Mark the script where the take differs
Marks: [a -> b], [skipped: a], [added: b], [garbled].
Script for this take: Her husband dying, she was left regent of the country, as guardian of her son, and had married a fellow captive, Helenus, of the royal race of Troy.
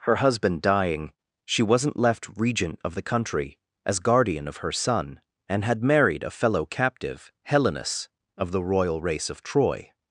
Her husband dying, she [was -> wasn't] left regent of the country, as guardian of her son, and had married a fellow captive, Helenus, of the royal race of Troy.